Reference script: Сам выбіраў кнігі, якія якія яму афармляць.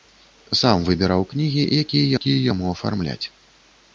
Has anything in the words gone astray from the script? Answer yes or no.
no